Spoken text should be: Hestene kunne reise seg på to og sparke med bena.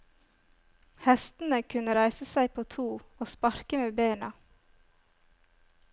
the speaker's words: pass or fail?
pass